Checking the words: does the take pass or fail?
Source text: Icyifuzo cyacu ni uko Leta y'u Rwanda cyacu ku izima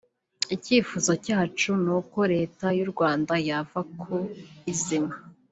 fail